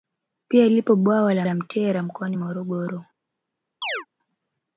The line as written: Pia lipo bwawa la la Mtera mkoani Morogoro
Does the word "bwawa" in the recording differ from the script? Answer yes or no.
no